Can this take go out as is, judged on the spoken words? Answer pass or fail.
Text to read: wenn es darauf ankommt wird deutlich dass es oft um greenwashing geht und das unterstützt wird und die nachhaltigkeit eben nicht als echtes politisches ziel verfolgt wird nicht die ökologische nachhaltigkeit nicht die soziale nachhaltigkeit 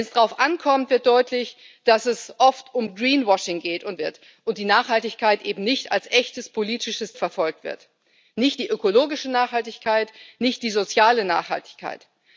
fail